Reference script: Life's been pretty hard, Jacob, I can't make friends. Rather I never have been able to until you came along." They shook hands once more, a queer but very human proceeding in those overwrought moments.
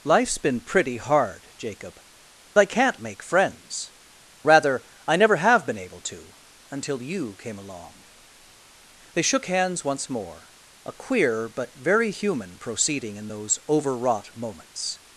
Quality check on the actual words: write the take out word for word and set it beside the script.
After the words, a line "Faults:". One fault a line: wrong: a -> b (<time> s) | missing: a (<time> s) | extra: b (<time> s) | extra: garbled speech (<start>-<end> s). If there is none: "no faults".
Life's been pretty hard, Jacob, I can't make friends. Rather I never have been able to until you came along." They shook hands once more, a queer but very human proceeding in those overwrought moments.
Faults:
no faults